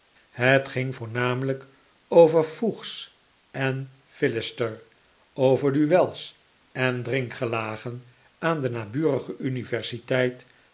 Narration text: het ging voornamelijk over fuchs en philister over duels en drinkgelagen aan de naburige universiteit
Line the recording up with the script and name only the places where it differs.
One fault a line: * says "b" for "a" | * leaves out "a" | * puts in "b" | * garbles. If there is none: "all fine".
all fine